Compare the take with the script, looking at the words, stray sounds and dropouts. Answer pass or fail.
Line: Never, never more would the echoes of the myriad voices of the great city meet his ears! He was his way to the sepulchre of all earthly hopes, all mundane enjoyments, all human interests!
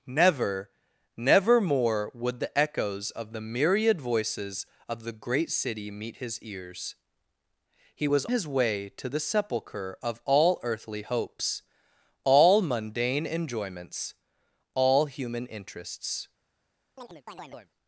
fail